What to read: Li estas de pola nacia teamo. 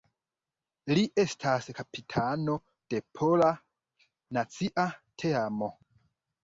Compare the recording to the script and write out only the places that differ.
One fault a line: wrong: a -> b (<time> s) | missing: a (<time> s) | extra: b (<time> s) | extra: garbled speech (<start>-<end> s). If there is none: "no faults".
extra: kapitano (1.8 s)